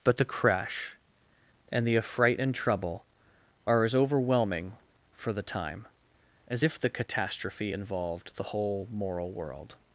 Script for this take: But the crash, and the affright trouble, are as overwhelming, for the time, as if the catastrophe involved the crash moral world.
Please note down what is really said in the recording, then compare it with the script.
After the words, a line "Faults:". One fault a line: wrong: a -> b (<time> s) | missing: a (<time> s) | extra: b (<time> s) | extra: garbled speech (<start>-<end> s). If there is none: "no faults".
But the crash, and the affright and trouble, are as overwhelming, for the time, as if the catastrophe involved the whole moral world.
Faults:
extra: and (2.4 s)
wrong: crash -> whole (8.5 s)